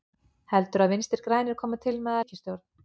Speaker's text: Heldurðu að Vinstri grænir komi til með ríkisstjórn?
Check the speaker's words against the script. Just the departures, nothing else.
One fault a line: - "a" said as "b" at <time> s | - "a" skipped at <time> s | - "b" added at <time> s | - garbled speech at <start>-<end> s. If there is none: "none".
none